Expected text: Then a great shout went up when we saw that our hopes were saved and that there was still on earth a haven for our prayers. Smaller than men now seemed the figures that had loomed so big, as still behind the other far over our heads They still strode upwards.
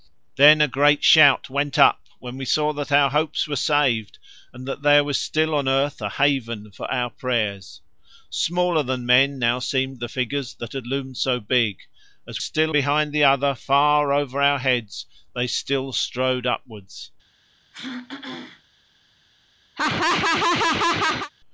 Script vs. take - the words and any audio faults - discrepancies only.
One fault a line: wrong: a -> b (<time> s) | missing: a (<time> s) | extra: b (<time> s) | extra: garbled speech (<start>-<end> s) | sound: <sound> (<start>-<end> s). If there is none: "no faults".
sound: throat clearing (17.7-18.6 s)
sound: laugh (19.8-21.3 s)